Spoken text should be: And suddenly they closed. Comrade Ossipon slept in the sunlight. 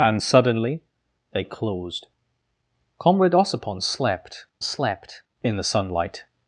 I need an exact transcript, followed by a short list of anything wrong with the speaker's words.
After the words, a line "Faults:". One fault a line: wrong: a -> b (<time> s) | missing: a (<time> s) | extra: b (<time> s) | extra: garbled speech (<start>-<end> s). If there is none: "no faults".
And suddenly they closed. Comrade Ossipon slept slept in the sunlight.
Faults:
extra: slept (4.6 s)